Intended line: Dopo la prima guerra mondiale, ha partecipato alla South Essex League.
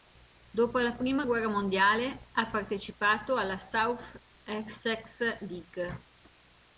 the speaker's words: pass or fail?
pass